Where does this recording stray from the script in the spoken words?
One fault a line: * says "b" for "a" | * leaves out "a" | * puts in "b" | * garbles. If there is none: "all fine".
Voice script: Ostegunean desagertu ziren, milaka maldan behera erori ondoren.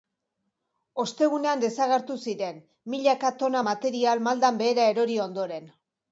* puts in "tona material"